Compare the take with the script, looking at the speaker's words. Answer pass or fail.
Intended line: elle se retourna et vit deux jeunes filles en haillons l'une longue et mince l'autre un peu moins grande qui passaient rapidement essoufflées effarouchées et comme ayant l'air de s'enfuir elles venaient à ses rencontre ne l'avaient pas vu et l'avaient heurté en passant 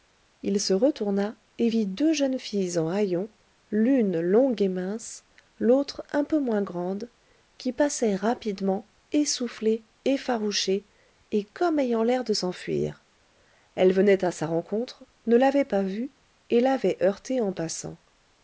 fail